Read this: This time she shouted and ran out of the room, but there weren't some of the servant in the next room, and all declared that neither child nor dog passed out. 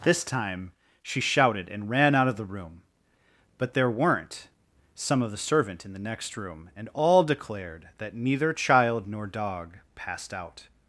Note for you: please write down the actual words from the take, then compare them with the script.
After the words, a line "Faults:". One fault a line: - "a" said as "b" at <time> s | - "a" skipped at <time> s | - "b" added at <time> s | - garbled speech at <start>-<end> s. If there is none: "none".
This time she shouted and ran out of the room, but there weren't some of the servant in the next room, and all declared that neither child nor dog passed out.
Faults:
none